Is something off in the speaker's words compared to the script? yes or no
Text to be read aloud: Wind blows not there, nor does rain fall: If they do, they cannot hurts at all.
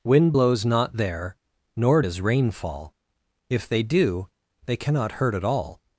yes